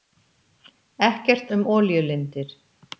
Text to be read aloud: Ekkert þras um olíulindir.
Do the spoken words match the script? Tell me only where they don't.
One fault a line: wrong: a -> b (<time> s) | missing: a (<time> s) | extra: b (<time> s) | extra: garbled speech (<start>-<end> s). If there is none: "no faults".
missing: þras (1.5 s)